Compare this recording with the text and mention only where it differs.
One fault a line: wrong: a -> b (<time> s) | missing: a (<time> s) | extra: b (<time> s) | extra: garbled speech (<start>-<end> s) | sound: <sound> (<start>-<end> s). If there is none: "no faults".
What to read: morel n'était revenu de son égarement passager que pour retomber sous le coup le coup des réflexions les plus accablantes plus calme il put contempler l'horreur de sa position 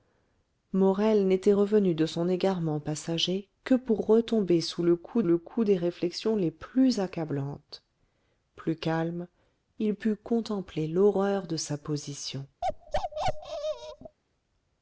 sound: bark (12.6-14.2 s)